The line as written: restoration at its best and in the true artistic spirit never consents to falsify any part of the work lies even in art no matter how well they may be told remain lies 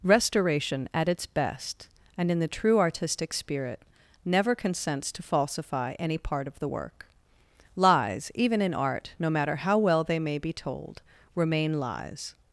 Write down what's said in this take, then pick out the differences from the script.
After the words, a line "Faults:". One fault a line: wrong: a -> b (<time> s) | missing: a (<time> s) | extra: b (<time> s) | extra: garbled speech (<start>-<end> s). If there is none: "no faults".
restoration at its best and in the true artistic spirit never consents to falsify any part of the work lies even in art no matter how well they may be told remain lies
Faults:
no faults